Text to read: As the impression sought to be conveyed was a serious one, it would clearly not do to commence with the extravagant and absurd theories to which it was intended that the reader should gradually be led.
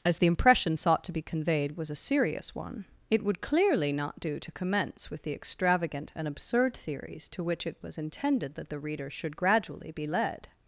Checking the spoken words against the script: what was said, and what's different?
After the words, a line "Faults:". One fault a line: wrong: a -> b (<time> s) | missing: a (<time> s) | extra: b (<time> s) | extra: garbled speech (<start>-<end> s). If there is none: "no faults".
As the impression sought to be conveyed was a serious one, it would clearly not do to commence with the extravagant and absurd theories to which it was intended that the reader should gradually be led.
Faults:
no faults